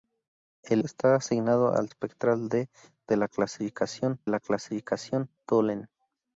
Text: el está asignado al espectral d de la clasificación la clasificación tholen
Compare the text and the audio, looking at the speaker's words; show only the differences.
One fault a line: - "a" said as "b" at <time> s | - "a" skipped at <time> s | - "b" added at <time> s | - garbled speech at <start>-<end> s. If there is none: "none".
none